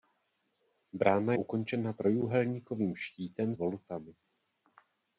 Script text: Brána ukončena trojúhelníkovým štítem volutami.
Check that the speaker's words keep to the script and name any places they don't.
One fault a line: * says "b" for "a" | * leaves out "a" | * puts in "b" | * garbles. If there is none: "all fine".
all fine